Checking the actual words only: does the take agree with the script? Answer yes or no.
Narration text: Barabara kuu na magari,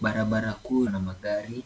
yes